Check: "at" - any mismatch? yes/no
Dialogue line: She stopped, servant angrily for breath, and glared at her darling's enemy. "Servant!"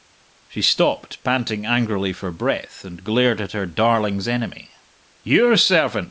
no